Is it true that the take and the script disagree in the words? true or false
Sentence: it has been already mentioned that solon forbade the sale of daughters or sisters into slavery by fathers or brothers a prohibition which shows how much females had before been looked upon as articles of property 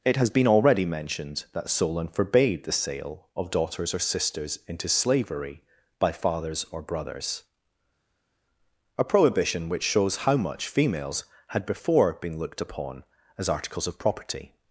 false